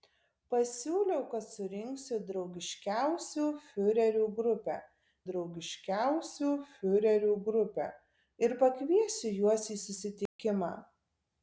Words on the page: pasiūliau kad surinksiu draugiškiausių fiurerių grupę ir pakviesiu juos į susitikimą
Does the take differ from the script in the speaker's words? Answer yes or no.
yes